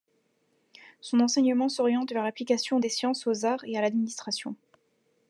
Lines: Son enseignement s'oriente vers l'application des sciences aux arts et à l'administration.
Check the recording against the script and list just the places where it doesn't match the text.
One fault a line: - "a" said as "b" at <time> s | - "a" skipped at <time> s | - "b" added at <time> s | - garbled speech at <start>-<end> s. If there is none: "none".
none